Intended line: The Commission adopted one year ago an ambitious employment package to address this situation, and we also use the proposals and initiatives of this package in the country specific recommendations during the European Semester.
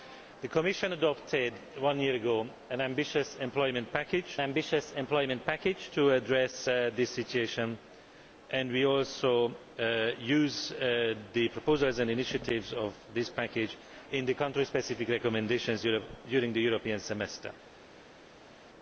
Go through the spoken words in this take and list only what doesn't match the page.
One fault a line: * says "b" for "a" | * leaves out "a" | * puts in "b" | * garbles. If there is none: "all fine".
* puts in "ambitious employment package"